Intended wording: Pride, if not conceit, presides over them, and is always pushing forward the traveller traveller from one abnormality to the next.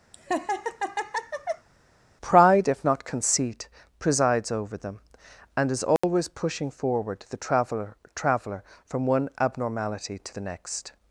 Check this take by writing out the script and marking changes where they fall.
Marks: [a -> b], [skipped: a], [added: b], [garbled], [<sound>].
[laugh] Pride, if not conceit, presides over them, and is always [dropout] pushing forward the traveller traveller from one abnormality to the next.